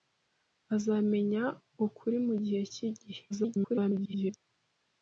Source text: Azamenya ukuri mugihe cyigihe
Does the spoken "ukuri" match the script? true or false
true